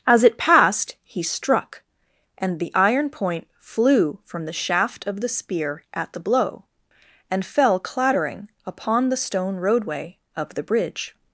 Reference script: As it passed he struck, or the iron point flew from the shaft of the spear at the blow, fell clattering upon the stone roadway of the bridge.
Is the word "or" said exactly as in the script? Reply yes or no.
no